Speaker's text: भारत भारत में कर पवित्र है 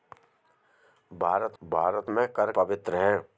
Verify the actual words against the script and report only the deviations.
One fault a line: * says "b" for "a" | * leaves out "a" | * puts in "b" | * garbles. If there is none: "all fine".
all fine